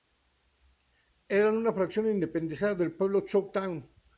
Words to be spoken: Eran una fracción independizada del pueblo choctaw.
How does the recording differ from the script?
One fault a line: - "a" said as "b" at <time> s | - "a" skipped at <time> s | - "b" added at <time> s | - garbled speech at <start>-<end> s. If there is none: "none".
none